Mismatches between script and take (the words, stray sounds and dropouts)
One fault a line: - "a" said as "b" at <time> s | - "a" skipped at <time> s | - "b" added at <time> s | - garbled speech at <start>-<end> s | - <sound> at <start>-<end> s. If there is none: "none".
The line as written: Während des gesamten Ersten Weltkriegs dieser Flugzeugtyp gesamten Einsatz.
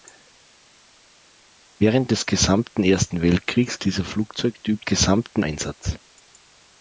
none